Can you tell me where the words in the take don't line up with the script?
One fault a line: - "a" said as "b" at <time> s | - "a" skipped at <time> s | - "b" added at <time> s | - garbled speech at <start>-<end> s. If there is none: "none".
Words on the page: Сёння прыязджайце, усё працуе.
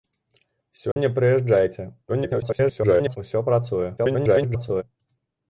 - garbled speech at 2.1-3.2 s
- garbled speech at 4.0-4.8 s